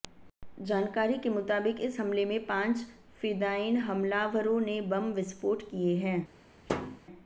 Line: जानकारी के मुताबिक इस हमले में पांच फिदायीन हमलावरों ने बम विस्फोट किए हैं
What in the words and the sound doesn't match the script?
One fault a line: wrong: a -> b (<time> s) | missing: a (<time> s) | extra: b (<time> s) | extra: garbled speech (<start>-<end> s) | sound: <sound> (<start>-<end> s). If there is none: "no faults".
sound: thud (6.7-7.0 s)